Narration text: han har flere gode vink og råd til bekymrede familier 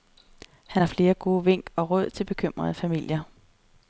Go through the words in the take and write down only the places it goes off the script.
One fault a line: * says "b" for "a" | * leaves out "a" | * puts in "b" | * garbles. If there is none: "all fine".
all fine